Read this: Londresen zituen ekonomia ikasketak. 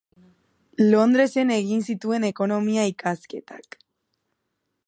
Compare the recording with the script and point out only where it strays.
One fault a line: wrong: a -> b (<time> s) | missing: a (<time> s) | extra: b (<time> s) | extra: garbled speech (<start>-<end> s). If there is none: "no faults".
extra: egin (1.6 s)